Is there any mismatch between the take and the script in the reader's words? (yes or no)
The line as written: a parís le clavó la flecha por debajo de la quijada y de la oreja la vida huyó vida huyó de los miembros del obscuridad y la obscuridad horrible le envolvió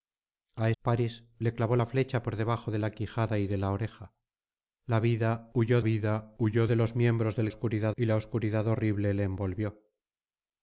no